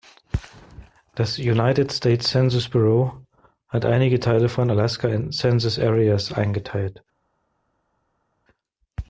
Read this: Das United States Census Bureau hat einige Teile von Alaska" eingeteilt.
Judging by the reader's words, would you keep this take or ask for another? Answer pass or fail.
fail